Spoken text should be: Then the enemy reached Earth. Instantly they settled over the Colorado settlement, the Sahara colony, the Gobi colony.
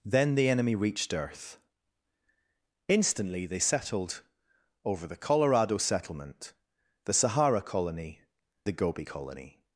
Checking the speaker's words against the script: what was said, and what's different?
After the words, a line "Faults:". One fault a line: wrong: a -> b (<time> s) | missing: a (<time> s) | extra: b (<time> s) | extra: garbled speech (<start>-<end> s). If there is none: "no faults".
Then the enemy reached Earth. Instantly they settled over the Colorado settlement, the Sahara colony, the Gobi colony.
Faults:
no faults